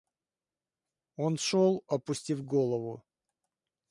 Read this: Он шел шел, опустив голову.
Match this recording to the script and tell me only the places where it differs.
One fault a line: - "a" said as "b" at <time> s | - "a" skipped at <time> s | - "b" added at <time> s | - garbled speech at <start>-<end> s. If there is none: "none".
- "шел" skipped at 1.9 s